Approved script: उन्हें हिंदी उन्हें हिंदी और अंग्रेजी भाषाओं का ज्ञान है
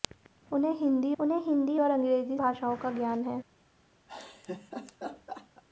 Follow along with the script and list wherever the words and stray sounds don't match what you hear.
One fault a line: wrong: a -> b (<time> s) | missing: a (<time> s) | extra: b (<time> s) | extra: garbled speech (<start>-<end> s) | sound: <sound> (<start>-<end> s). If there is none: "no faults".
sound: laugh (4.1-5.6 s)